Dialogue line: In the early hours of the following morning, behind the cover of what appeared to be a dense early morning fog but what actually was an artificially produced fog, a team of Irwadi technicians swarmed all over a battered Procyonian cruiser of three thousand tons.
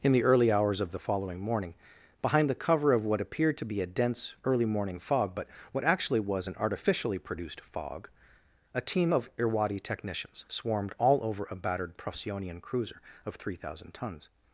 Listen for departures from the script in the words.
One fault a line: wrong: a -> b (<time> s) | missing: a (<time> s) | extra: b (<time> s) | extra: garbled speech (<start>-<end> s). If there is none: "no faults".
no faults